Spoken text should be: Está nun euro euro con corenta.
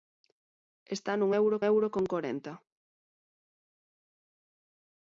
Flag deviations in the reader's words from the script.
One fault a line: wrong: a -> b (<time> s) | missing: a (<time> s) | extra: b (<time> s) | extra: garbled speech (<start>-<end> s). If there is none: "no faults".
no faults